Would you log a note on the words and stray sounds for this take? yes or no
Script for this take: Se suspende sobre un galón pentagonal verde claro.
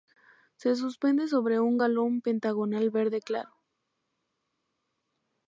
no